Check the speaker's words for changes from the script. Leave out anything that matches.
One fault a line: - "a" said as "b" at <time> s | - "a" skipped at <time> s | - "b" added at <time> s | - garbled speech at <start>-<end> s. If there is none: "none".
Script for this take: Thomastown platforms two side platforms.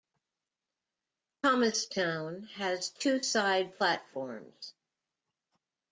- "platforms" said as "has" at 2.4 s